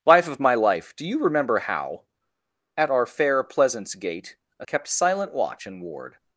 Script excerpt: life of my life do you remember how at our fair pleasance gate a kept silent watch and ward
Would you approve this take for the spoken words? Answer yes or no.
yes